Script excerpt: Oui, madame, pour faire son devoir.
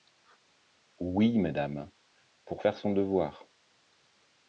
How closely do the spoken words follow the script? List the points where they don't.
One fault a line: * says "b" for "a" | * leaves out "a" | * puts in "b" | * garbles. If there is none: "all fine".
all fine